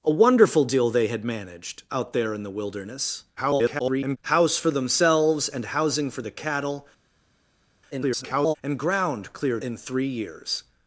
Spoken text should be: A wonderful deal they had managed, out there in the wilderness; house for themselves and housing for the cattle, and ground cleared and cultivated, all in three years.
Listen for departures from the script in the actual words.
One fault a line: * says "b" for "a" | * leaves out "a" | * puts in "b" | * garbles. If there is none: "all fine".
* garbles
* garbles
* leaves out "and cultivated all"